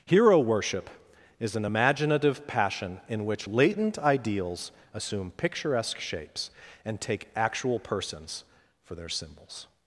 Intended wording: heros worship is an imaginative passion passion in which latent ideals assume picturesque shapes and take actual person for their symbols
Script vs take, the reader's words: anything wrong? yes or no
yes